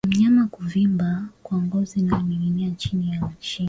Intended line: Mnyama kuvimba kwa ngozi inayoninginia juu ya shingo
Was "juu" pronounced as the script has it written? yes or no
no